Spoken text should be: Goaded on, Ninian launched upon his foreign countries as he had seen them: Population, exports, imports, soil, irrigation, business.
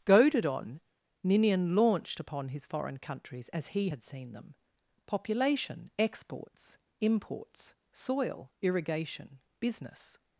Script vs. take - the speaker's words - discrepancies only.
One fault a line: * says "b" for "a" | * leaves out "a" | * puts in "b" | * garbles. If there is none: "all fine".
all fine